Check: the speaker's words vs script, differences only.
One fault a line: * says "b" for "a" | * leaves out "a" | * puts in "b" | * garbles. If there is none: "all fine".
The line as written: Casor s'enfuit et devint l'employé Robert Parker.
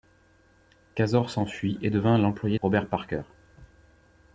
all fine